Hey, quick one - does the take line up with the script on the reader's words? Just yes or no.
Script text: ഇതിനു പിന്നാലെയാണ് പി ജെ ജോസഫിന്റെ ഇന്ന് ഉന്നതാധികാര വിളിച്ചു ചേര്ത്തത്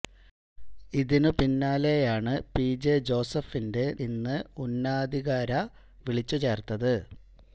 yes